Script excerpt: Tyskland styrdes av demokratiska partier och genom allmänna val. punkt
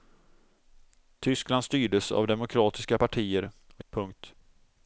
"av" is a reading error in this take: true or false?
false